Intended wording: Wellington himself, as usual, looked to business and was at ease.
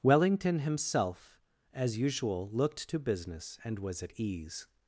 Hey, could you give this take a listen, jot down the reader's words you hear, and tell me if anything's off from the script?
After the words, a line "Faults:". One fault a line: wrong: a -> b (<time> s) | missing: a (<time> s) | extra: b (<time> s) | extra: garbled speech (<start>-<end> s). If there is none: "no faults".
Wellington himself, as usual, looked to business and was at ease.
Faults:
no faults